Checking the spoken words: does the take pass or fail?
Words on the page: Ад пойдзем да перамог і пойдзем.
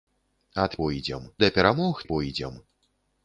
pass